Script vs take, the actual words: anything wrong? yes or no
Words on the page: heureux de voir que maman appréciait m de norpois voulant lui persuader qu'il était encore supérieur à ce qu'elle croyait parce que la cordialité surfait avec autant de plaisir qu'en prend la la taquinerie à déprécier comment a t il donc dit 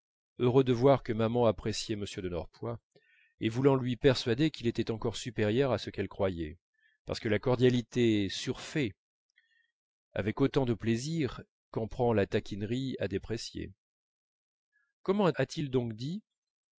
yes